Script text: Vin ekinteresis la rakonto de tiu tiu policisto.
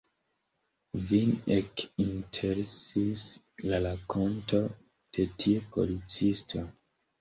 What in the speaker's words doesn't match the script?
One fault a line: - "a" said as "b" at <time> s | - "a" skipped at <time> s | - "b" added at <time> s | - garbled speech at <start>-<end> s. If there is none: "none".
- "tiu" skipped at 5.7 s